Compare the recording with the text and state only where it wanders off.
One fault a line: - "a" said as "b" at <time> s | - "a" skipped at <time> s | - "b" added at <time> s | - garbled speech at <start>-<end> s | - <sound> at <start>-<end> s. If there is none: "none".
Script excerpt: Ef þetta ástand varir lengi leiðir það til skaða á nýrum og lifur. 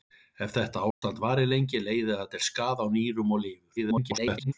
- dropout at 0.9-1.0 s
- garbled speech at 3.8-4.5 s